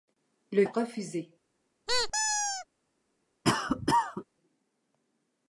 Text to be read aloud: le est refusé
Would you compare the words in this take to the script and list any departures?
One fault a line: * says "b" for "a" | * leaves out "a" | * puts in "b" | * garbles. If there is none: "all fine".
all fine